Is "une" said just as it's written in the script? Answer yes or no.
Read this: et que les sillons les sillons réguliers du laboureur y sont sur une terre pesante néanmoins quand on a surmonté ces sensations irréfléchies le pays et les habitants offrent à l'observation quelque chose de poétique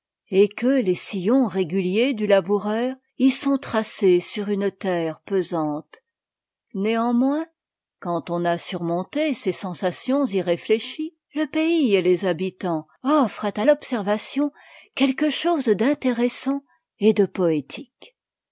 yes